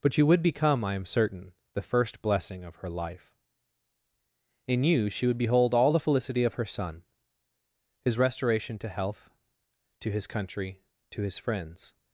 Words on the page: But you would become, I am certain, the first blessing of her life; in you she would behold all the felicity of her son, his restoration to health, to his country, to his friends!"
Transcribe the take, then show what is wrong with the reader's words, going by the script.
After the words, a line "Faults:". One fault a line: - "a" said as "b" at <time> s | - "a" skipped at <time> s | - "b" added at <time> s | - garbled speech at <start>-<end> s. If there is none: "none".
But you would become, I am certain, the first blessing of her life; in you she would behold all the felicity of her son, his restoration to health, to his country, to his friends!"
Faults:
none